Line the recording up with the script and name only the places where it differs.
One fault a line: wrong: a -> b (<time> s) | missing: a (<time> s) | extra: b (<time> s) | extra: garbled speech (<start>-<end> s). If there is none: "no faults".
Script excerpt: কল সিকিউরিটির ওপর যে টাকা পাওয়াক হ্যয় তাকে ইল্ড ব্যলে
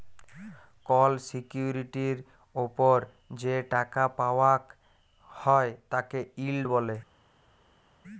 no faults